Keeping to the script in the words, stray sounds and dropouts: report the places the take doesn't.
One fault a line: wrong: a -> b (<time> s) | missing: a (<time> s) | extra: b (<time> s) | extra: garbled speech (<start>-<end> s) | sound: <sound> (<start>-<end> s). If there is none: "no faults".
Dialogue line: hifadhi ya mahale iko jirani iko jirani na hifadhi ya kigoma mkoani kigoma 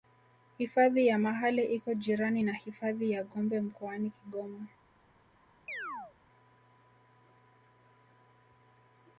missing: iko jirani (2.4 s)
wrong: kigoma -> gombe (3.2 s)
sound: chirp (5.7-6.1 s)